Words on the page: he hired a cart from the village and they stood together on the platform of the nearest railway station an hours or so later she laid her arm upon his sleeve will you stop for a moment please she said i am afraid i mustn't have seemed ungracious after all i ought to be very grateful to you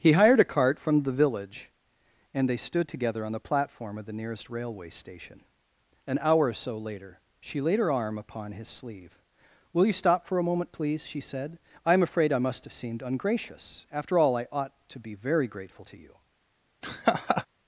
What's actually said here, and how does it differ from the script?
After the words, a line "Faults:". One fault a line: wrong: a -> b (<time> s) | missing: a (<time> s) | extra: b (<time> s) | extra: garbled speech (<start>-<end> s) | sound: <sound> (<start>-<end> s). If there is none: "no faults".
he hired a cart from the village and they stood together on the platform of the nearest railway station an hour or so later she laid her arm upon his sleeve will you stop for a moment please she said i am afraid i must have seemed ungracious after all i ought to be very grateful to you
Faults:
wrong: hours -> hour (6.2 s)
wrong: mustn't -> must (12.4 s)
sound: laugh (16.8-17.5 s)